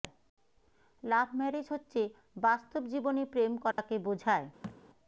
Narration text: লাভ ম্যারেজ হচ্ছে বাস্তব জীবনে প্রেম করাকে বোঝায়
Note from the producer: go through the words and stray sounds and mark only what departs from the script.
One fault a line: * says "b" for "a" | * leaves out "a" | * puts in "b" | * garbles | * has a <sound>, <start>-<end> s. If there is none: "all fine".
* has a dropout, 3.7-3.8 s
* has a thud, 4.6-4.8 s